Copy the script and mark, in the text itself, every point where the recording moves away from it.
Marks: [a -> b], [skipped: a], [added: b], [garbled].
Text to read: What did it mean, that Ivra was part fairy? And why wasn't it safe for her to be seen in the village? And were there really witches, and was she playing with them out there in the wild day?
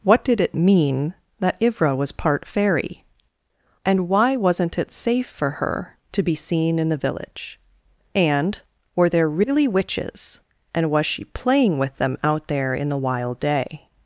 What did it mean, that Ivra was part fairy? And why wasn't it safe for her to be seen in the village? And were there really witches, and was she playing with them out there in the wild day?